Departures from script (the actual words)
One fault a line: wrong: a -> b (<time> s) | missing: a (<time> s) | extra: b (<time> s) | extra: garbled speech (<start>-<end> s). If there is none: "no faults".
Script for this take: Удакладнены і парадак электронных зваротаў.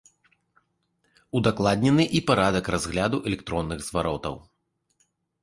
extra: разгляду (2.8 s)